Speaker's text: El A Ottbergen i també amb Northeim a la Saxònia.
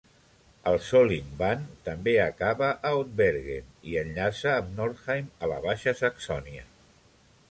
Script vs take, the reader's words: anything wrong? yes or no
yes